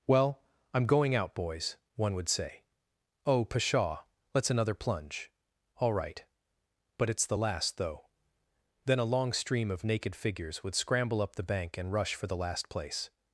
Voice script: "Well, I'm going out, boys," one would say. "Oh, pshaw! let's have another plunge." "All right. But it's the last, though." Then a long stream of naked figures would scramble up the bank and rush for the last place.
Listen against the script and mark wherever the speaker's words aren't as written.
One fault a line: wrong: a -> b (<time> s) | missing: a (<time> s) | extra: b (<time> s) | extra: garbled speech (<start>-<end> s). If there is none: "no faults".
missing: have (4.5 s)